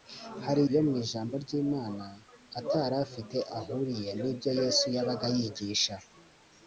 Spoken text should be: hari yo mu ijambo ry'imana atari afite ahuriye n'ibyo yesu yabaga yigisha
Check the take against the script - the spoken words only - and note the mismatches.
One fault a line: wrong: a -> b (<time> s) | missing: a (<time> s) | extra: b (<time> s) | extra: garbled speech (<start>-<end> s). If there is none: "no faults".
no faults